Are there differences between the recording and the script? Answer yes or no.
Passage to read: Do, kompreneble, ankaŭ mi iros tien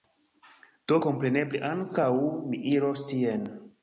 no